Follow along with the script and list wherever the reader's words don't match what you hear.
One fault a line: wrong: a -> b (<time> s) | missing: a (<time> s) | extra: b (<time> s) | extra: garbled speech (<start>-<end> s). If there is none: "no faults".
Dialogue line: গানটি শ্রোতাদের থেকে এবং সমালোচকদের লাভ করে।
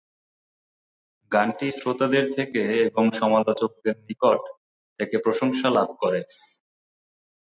extra: নিকট থেকে প্রশংসা (4.0 s)